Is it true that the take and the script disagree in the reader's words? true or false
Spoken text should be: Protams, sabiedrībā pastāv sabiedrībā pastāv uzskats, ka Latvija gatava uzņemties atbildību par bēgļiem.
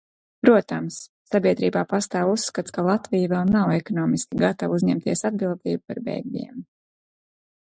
true